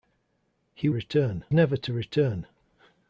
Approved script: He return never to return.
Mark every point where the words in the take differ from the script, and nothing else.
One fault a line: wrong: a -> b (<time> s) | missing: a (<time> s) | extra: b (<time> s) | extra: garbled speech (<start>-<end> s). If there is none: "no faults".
no faults